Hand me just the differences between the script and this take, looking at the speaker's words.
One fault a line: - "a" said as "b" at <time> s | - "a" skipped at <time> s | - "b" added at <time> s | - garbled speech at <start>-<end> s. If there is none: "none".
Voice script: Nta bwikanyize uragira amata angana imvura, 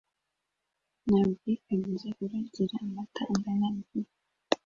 none